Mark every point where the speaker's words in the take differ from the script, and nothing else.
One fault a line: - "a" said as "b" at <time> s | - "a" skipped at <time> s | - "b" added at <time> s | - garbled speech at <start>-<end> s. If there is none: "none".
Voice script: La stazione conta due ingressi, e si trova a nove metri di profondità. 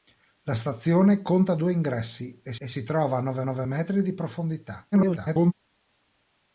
- "e" added at 2.6 s
- "nove" added at 3.4 s
- garbled speech at 4.9-5.5 s